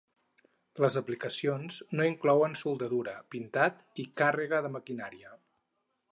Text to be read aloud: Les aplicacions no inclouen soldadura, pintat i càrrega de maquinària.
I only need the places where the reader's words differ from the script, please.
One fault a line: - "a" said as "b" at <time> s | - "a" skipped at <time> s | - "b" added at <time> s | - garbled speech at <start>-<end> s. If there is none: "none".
none